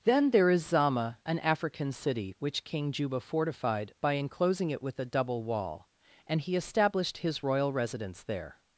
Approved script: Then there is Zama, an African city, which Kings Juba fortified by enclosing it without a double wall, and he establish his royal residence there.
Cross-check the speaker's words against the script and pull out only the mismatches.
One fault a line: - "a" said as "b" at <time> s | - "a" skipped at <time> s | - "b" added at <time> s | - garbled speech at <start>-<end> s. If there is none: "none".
- "Kings" said as "King" at 2.6 s
- "without" said as "with" at 4.8 s
- "establish" said as "established" at 6.5 s